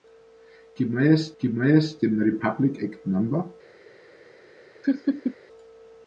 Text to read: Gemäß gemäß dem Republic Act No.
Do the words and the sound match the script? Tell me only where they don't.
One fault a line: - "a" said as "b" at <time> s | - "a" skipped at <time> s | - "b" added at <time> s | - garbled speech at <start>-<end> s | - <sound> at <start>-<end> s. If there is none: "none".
- laugh at 4.8-5.4 s